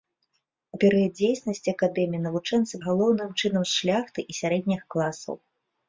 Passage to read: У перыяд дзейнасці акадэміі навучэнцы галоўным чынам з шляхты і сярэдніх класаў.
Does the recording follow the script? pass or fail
pass